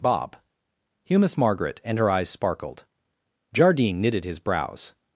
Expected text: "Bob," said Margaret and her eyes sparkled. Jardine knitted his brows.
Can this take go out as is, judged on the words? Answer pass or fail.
fail